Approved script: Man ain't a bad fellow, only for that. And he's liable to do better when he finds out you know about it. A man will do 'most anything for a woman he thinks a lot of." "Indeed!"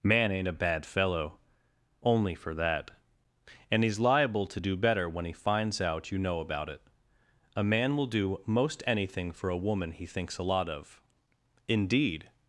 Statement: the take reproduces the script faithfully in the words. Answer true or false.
true